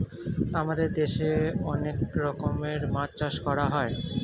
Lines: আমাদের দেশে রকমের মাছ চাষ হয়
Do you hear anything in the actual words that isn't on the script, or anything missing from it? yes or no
yes